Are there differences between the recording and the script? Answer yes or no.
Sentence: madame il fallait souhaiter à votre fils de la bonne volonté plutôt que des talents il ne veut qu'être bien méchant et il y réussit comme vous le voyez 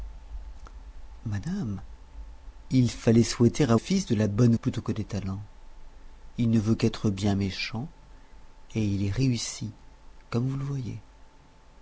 yes